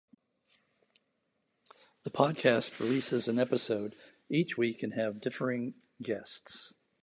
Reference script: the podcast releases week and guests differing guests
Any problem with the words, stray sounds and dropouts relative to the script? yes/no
yes